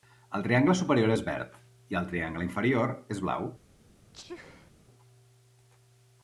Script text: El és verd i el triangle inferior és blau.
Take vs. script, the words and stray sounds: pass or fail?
fail